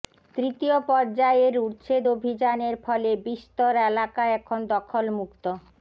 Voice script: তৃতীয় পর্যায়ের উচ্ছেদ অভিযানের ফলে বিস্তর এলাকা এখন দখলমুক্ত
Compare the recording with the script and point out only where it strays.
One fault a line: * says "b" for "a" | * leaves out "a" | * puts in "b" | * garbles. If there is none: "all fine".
all fine